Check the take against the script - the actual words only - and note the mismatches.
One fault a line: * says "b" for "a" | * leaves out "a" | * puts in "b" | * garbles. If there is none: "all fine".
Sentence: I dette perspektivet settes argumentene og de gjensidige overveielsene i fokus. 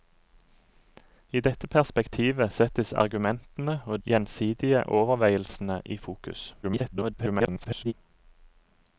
* leaves out "de"
* garbles